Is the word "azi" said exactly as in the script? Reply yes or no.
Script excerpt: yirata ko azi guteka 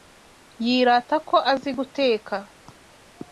yes